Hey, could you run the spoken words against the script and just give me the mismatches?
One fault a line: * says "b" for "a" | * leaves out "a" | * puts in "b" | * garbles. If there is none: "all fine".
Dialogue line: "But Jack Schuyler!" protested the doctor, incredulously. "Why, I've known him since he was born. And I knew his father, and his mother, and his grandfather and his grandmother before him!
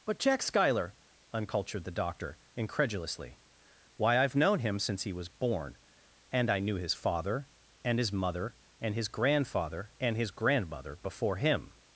* says "uncultured" for "protested"